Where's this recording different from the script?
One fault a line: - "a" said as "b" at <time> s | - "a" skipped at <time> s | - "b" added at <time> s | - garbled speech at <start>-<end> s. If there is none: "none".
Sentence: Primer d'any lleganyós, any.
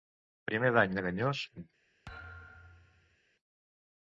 none